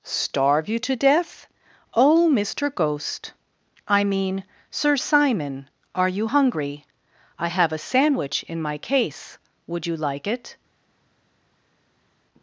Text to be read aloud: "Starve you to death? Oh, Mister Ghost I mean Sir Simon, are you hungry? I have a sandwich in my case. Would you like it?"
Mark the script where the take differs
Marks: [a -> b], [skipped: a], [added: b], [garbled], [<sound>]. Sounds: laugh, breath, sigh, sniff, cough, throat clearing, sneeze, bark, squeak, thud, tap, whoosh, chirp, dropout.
"Starve you to death? Oh, Mister Ghost I mean Sir Simon, are you hungry? I have a sandwich in my case. Would you like it?"